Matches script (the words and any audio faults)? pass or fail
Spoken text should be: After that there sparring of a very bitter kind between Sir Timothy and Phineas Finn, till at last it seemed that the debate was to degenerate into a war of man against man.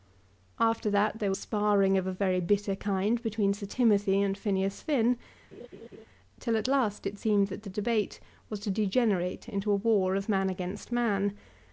fail